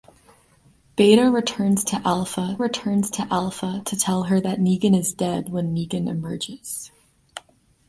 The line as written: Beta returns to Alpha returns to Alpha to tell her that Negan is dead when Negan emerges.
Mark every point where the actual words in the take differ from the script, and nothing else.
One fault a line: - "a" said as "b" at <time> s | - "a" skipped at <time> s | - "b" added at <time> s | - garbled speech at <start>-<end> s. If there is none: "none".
none